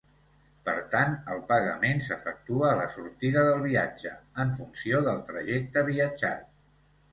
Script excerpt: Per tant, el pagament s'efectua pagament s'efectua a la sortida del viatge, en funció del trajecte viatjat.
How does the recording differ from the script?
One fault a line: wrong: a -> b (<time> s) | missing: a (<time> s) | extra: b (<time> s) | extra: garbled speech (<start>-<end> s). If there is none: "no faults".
missing: pagament s'efectua (2.7 s)